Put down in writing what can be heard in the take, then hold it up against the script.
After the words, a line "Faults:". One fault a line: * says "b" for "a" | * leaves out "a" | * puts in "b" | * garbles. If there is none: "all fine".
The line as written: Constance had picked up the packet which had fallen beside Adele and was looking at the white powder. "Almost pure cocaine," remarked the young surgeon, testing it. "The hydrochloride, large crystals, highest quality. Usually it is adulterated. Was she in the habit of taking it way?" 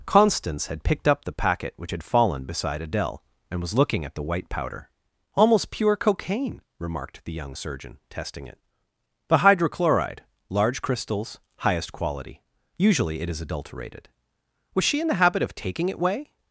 Constance had picked up the packet which had fallen beside Adele and was looking at the white powder. "Almost pure cocaine," remarked the young surgeon, testing it. "The hydrochloride, large crystals, highest quality. Usually it is adulterated. Was she in the habit of taking it way?"
Faults:
all fine